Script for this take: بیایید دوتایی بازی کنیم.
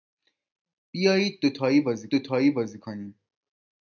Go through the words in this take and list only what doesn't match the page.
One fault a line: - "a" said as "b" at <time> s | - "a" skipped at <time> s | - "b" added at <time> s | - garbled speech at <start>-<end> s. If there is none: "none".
- "دوتایی بازی" added at 2.1 s